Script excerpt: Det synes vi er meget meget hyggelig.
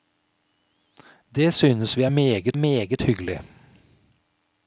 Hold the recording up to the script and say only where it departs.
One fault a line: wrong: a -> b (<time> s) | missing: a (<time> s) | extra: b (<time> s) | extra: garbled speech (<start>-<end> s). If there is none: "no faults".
no faults